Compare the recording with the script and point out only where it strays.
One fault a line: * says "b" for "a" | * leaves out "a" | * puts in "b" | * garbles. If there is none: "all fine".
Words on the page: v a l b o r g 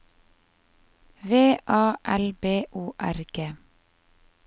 all fine